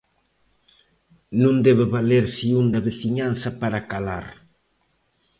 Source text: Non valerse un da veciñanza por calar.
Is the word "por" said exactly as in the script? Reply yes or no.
no